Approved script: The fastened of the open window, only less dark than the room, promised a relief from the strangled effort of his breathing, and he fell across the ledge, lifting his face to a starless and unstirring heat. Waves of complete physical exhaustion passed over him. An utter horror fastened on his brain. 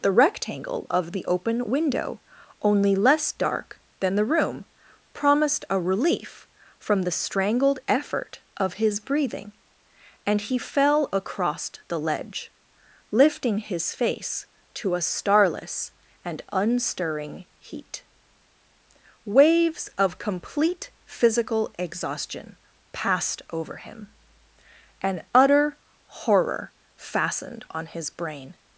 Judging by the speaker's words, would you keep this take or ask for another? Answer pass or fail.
fail